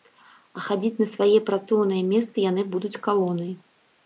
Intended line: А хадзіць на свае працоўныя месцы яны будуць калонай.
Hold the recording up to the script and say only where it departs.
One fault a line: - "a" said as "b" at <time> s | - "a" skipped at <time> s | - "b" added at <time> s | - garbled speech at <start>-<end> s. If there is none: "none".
none